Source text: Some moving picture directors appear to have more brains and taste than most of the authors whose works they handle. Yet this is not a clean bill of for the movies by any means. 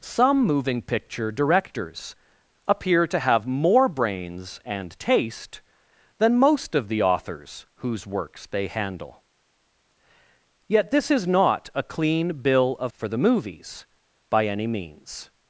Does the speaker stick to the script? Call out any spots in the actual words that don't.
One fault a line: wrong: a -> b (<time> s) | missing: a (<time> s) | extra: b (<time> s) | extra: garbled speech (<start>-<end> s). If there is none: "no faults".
no faults